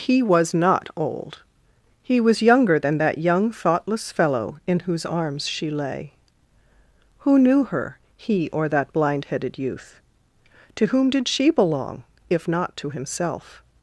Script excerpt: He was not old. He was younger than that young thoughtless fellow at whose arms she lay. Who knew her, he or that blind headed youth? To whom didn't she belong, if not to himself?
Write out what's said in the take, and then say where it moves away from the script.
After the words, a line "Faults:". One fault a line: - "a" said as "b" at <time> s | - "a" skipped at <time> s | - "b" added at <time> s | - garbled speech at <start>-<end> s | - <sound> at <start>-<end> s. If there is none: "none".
He was not old. He was younger than that young thoughtless fellow in whose arms she lay. Who knew her, he or that blind headed youth? To whom did she belong, if not to himself?
Faults:
- "at" said as "in" at 4.7 s
- "didn't" said as "did" at 11.1 s